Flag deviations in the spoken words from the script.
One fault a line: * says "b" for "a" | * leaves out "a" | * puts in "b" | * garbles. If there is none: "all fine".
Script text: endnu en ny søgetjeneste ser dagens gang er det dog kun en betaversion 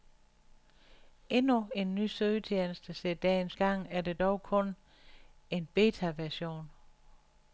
all fine